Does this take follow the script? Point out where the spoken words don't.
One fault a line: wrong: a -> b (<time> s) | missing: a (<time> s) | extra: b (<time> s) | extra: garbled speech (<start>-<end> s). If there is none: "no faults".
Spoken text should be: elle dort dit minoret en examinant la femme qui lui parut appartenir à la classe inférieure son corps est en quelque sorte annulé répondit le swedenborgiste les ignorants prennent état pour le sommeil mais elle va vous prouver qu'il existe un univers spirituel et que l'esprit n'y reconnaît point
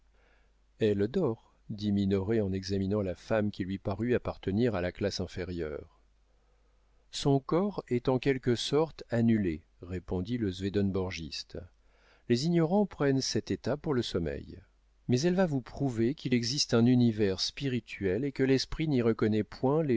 extra: cet (13.2 s)